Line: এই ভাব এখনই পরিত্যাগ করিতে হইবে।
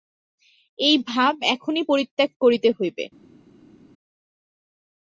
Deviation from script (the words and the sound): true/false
false